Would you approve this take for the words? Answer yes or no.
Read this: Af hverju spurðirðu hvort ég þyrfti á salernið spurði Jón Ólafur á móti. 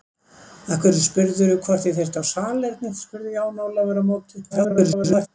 no